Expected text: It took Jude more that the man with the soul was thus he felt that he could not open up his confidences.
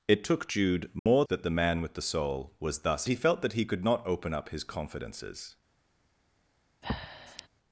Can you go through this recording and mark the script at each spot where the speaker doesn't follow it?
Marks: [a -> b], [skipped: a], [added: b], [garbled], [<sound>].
It took Jude more [dropout] that the man with the soul was thus he felt that he could not open up his confidences. [breath]